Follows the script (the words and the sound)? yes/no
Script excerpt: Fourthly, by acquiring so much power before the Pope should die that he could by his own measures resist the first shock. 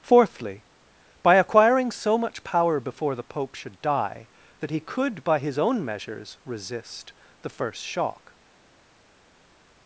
yes